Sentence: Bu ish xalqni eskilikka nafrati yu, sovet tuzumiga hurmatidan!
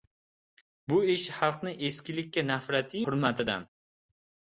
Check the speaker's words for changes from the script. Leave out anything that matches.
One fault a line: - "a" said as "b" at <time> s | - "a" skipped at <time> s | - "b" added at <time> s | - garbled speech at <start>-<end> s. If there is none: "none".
- "yu sovet tuzumiga" skipped at 3.0 s